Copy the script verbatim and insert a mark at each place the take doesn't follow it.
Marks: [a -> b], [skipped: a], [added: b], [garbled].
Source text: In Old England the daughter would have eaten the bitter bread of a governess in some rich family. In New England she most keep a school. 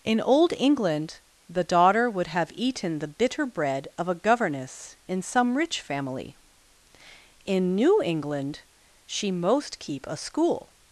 In Old England the daughter would have eaten the bitter bread of a governess in some rich family. In New England she most keep a school.